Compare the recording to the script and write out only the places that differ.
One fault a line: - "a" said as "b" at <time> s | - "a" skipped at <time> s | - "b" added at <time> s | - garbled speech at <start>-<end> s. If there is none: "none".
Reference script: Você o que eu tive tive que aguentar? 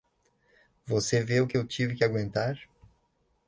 - "vê" added at 1.2 s
- "tive" skipped at 2.0 s